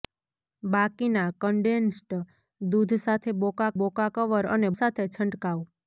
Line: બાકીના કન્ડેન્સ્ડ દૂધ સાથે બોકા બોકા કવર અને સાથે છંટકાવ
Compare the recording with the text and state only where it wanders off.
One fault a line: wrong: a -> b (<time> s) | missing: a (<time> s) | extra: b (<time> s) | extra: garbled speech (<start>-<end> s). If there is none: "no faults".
no faults